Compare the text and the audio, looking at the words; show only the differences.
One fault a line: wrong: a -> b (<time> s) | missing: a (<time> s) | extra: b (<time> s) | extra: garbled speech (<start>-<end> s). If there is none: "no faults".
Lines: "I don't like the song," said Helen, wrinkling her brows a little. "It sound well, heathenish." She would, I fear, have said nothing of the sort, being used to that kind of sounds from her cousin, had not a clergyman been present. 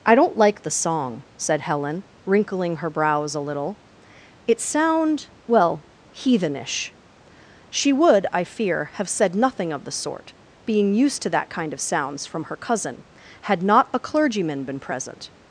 no faults